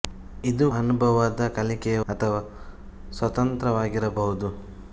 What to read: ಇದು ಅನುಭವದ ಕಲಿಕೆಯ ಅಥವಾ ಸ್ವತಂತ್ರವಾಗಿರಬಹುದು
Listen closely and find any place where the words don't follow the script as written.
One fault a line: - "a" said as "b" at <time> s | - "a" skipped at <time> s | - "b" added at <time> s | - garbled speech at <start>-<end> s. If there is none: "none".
none